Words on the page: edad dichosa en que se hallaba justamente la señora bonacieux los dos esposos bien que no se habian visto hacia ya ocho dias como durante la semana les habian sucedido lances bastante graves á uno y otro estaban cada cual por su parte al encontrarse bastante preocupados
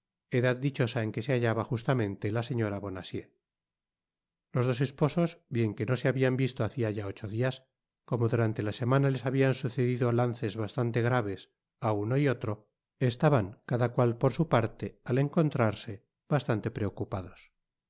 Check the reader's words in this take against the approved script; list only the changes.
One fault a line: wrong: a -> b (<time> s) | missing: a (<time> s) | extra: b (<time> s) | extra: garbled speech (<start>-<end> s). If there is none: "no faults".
no faults